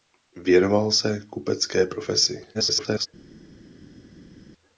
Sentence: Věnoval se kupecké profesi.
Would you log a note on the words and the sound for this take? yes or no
yes